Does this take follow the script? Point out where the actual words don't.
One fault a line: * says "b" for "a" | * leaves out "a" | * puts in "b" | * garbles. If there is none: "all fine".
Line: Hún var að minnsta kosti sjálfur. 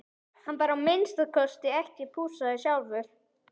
* says "Hann" for "Hún"
* puts in "ekki pússaður"